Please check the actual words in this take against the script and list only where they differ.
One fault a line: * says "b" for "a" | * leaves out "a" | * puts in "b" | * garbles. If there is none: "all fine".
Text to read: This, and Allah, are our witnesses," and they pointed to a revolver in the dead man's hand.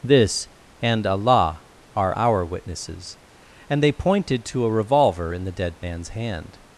all fine